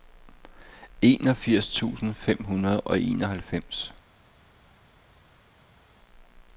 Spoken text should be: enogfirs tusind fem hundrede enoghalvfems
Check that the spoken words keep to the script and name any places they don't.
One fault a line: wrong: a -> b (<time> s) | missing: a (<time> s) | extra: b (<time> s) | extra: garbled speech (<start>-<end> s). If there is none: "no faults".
extra: og (2.8 s)